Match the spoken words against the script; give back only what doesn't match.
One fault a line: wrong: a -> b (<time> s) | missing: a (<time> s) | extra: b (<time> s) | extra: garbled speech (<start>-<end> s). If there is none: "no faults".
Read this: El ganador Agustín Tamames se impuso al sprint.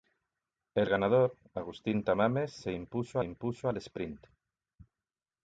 extra: impuso (3.2 s)